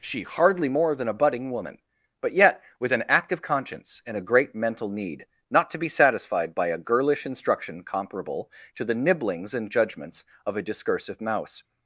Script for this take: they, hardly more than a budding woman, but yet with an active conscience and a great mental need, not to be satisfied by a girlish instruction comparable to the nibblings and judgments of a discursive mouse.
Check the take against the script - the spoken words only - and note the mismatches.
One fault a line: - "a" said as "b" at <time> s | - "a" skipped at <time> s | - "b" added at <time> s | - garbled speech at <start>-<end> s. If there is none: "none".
- "they" said as "she" at 0.0 s